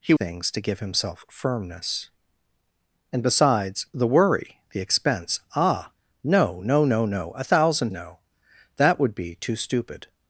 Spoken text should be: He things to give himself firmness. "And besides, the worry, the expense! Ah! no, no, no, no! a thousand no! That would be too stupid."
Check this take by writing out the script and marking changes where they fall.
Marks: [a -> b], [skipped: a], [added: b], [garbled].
He things to give himself firmness. "And besides, the worry, the expense! Ah! no, no, no, no! a thousand no! That would be too stupid."